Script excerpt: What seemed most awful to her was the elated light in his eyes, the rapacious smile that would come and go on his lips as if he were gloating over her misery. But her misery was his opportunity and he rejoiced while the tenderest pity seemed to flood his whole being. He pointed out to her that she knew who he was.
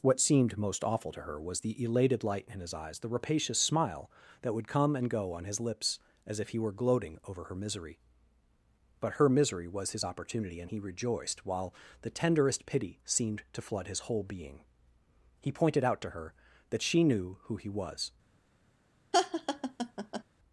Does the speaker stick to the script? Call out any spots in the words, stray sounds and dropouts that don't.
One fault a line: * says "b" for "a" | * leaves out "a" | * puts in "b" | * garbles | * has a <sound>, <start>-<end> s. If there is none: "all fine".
* has a laugh, 19.1-20.2 s